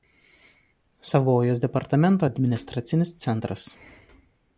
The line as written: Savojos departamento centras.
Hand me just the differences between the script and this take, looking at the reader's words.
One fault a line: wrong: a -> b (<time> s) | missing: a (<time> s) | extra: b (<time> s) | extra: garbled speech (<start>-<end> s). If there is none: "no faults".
extra: administracinis (2.2 s)